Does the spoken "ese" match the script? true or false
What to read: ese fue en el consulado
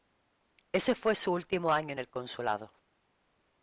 true